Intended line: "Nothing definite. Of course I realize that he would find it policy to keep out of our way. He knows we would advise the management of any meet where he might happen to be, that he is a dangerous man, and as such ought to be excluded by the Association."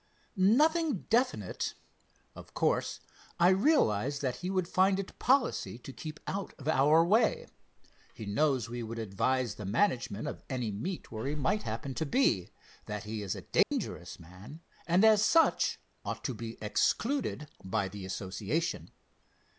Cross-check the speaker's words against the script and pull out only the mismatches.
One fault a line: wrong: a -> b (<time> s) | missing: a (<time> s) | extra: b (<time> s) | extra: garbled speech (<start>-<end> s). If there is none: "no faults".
no faults